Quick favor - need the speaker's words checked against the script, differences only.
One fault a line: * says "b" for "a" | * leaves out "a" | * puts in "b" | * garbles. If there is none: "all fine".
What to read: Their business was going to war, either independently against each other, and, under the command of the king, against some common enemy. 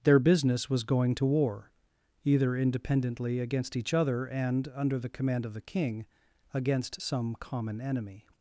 all fine